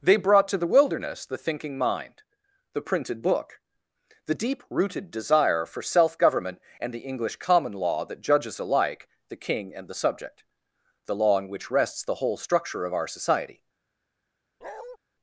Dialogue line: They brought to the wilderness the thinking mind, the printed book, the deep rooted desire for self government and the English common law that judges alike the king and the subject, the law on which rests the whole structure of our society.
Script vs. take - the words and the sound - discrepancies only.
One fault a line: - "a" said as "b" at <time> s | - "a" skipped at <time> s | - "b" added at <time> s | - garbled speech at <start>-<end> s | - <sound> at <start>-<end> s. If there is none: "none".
- bark at 14.6-15.0 s